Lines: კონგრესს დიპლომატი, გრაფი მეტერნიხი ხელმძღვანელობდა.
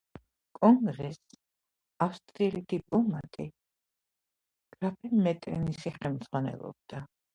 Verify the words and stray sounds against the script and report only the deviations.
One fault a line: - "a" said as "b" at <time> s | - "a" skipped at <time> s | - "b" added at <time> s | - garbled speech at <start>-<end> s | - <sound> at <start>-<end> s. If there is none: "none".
- "ავსტრიელი" added at 2.1 s